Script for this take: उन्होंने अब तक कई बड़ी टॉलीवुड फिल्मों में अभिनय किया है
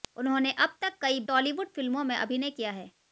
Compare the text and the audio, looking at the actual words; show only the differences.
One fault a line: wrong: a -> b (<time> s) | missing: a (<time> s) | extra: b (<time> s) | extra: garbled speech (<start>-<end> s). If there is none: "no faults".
missing: बड़ी (1.2 s)